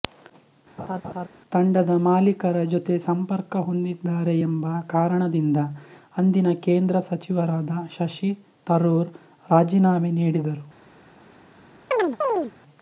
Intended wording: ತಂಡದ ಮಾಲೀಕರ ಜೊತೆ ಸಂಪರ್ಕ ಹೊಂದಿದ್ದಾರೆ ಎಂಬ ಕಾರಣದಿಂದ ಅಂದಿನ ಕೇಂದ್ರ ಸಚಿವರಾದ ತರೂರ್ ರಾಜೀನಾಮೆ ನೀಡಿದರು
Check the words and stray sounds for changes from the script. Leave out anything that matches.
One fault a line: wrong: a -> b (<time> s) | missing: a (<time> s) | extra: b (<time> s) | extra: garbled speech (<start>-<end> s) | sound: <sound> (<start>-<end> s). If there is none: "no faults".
sound: laugh (0.8-1.3 s)
extra: ಶಶಿ (7.9 s)
sound: chirp (11.9-12.5 s)